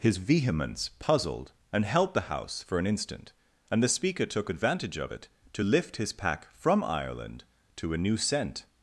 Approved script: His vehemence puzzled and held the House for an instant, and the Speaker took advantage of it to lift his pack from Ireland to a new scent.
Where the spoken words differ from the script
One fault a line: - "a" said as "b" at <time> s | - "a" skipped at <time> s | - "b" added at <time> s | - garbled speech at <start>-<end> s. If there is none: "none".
none